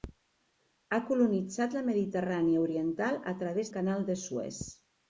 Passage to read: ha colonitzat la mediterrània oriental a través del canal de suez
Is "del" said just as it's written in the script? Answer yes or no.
no